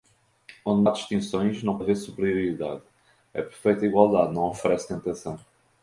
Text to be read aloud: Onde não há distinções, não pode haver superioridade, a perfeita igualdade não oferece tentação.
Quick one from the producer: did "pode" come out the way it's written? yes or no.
no